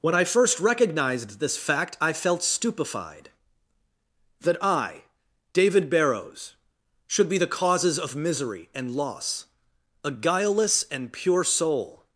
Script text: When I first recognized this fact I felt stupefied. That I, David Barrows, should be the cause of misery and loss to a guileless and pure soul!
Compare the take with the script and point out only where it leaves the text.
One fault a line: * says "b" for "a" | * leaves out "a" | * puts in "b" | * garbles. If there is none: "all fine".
* says "causes" for "cause"
* leaves out "to"